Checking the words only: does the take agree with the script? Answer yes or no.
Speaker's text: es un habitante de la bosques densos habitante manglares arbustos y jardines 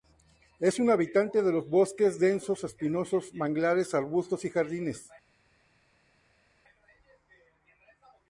no